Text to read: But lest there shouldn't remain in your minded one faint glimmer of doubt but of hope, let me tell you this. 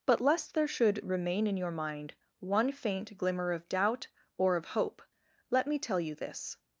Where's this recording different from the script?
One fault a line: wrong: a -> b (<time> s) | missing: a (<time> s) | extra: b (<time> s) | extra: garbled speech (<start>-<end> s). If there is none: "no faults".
wrong: shouldn't -> should (0.7 s)
wrong: minded -> mind (1.7 s)
wrong: but -> or (4.4 s)